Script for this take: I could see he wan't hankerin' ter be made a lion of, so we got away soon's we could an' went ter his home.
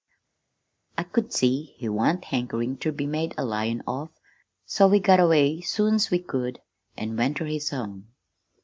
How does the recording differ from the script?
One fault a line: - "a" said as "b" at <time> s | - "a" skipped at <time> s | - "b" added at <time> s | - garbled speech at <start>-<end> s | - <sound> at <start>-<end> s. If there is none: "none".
none